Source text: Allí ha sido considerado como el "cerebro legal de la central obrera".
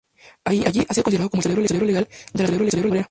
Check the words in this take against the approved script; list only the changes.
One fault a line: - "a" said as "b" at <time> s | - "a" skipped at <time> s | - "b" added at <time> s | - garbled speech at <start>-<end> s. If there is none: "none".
- "central" said as "cerebro" at 2.5 s